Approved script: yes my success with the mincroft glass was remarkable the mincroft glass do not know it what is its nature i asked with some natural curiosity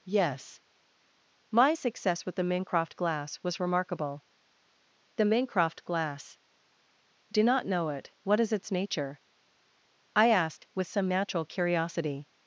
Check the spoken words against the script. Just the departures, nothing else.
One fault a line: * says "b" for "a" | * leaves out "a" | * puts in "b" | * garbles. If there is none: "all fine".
all fine